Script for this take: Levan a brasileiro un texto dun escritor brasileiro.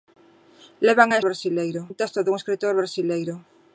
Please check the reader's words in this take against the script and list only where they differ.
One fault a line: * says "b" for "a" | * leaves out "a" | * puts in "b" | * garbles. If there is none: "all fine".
all fine